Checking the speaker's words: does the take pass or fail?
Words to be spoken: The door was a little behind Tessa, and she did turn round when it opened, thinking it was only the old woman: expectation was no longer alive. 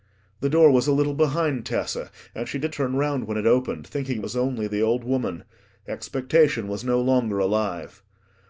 pass